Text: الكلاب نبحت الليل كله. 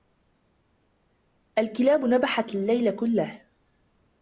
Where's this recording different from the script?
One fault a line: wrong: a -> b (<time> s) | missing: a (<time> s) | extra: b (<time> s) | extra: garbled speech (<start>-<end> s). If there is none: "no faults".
no faults